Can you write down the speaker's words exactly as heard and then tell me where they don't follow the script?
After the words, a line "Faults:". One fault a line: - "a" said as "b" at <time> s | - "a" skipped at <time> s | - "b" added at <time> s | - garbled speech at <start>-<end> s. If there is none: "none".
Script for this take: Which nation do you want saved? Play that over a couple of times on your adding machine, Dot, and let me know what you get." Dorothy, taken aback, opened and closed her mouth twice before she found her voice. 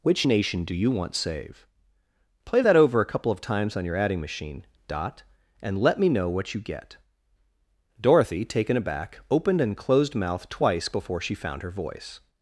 Which nation do you want save? Play that over a couple of times on your adding machine, Dot, and let me know what you get." Dorothy, taken aback, opened and closed mouth twice before she found her voice.
Faults:
- "saved" said as "save" at 1.1 s
- "her" skipped at 10.1 s